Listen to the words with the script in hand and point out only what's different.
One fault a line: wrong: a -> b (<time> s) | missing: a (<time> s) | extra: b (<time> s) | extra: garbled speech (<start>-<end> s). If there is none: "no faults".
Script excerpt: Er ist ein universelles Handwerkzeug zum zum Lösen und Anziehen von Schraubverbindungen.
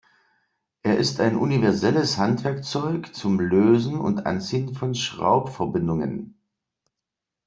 missing: zum (3.4 s)